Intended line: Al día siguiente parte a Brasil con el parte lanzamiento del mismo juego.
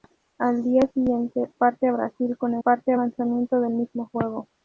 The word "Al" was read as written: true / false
true